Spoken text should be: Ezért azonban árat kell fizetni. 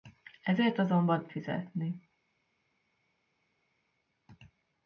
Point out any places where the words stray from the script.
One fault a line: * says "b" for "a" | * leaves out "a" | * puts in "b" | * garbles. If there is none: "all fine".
* leaves out "árat kell"